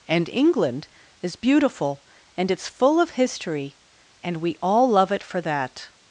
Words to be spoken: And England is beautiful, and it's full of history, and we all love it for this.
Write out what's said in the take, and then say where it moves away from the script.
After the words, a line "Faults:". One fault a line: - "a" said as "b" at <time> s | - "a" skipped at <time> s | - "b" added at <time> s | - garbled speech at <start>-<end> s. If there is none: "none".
And England is beautiful, and it's full of history, and we all love it for that.
Faults:
- "this" said as "that" at 5.4 s